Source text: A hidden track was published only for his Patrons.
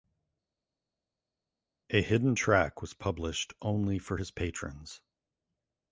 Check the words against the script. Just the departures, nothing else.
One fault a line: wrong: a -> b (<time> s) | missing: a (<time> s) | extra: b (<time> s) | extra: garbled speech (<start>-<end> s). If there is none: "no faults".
no faults